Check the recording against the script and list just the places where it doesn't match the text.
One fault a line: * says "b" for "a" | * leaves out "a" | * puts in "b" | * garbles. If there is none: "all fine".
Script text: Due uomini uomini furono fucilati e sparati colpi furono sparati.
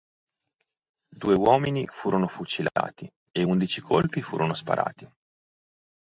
* leaves out "uomini"
* says "undici" for "sparati"